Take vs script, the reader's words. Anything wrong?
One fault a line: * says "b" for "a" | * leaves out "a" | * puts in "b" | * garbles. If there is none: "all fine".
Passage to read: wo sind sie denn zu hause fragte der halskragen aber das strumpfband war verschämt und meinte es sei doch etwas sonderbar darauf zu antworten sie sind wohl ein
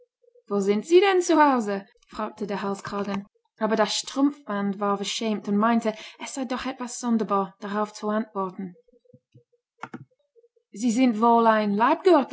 all fine